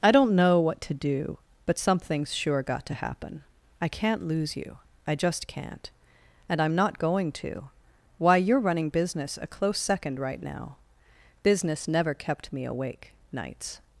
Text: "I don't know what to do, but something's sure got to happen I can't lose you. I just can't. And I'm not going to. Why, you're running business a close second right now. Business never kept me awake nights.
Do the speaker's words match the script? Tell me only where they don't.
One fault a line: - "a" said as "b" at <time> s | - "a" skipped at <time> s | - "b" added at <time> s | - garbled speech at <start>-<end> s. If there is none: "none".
none